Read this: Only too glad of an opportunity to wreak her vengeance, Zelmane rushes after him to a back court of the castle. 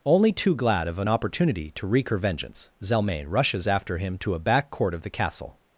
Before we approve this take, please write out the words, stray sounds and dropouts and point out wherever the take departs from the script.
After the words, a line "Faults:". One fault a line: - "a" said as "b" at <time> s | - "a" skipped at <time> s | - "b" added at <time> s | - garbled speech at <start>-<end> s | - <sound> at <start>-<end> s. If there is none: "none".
Only too glad of an opportunity to wreak her vengeance, Zelmane rushes after him to a back court of the castle.
Faults:
none